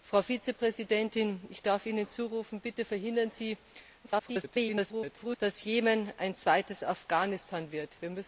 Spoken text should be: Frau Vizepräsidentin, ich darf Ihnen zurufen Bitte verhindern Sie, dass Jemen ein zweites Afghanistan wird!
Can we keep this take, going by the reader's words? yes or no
no